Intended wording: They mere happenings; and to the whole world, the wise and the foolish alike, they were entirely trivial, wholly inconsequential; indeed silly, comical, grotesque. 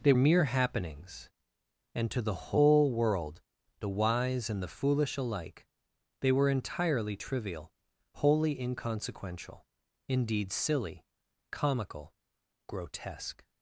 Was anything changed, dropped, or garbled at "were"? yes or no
no